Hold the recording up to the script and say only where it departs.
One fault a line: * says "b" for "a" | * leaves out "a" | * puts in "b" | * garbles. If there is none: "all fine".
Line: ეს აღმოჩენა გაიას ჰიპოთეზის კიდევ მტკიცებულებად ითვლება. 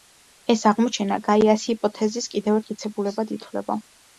all fine